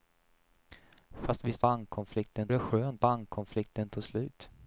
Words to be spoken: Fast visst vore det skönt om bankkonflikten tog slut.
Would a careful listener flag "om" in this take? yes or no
yes